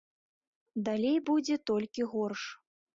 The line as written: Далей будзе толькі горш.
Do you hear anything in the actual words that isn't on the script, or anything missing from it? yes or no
no